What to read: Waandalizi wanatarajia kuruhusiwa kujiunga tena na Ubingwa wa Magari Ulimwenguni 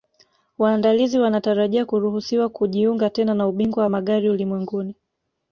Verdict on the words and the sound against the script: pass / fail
pass